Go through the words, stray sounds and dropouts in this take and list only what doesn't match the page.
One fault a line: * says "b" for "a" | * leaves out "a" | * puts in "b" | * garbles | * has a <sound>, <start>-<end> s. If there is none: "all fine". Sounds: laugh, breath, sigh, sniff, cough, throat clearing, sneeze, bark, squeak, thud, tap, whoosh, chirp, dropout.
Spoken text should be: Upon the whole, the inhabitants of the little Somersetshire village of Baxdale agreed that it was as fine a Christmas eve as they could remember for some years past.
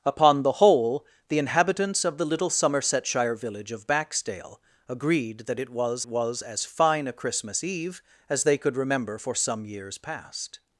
* puts in "was"